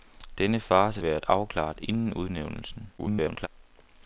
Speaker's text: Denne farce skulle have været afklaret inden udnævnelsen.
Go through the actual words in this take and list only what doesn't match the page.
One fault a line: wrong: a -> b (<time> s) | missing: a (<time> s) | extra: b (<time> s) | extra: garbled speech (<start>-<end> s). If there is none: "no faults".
missing: skulle have (1.0 s)
extra: garbled speech (3.0-3.5 s)